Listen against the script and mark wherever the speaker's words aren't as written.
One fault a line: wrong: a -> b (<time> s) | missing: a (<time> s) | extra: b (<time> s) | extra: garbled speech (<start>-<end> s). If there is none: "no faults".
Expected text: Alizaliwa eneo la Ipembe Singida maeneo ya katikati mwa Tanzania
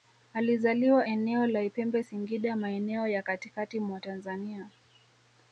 no faults